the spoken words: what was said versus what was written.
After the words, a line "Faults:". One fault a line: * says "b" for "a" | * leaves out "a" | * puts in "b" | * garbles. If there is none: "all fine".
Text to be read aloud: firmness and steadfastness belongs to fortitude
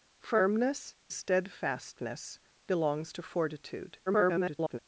firmness steadfastness belongs to fortitude [garbled]
Faults:
* leaves out "and"
* garbles